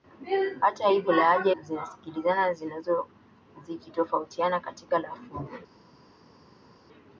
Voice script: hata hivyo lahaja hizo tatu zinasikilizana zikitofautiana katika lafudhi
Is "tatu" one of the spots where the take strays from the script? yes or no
yes